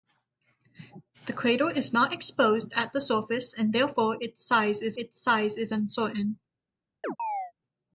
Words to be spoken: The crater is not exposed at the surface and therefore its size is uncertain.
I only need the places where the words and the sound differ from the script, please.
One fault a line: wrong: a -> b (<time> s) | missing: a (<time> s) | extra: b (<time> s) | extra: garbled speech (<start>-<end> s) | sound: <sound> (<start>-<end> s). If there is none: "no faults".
extra: its size is (5.0 s)
sound: chirp (7.0-7.5 s)